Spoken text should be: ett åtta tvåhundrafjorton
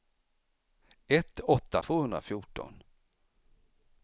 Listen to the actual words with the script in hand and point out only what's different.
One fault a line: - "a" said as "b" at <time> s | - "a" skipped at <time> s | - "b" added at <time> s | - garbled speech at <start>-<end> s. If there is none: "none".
none